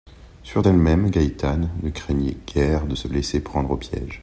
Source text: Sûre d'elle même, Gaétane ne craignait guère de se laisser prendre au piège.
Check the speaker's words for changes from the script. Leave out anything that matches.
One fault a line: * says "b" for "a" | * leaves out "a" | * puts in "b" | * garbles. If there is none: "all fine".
all fine